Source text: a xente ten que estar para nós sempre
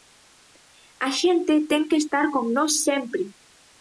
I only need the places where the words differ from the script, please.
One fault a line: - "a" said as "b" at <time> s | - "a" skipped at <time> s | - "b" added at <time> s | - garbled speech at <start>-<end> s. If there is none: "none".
- "para" said as "con" at 2.3 s